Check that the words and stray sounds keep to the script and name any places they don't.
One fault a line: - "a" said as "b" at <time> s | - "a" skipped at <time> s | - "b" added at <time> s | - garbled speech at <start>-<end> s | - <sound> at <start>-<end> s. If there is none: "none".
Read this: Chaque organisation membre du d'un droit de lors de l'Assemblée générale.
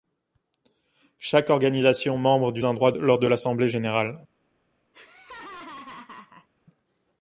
- laugh at 4.9-6.5 s